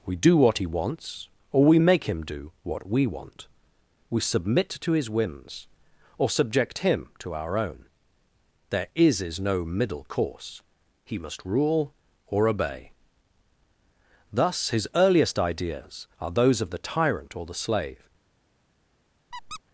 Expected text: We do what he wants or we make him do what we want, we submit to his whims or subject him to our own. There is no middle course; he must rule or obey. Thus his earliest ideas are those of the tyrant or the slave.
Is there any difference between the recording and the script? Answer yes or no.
yes